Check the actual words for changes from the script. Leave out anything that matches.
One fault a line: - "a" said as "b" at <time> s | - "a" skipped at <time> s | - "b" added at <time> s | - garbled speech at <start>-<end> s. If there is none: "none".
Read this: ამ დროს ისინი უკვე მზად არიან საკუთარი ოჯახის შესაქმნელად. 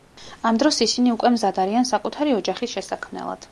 none